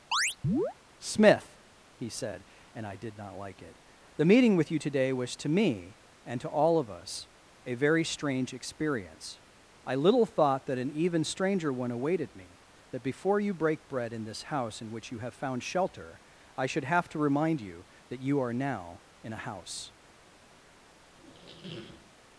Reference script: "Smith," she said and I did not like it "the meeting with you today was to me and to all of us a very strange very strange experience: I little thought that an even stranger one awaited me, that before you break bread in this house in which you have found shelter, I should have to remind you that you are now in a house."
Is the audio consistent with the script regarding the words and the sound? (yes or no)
no